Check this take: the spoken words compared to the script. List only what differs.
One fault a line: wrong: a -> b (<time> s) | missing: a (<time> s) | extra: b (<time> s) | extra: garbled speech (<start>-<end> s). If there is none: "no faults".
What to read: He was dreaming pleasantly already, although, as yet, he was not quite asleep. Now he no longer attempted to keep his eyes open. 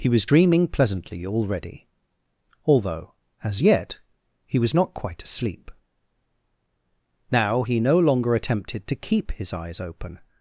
no faults